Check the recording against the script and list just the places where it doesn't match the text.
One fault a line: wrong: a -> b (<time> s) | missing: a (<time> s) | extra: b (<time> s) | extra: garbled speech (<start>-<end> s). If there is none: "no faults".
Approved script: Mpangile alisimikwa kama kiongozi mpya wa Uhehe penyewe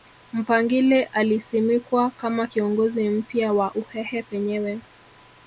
no faults